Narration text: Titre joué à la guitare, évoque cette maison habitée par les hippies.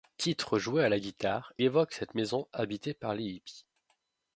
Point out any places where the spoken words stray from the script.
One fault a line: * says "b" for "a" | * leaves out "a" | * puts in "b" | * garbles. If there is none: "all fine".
all fine